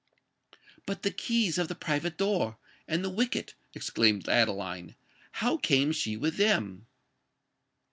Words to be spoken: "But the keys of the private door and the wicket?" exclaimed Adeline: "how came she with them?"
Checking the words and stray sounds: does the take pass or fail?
pass